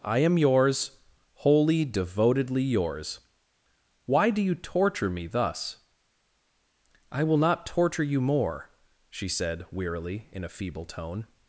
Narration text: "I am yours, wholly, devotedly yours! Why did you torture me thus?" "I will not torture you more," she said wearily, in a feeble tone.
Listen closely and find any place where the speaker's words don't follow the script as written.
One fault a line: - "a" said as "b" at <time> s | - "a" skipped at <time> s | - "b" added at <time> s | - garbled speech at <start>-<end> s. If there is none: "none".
- "did" said as "do" at 4.3 s